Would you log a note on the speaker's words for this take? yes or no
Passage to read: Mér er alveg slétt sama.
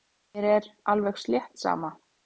no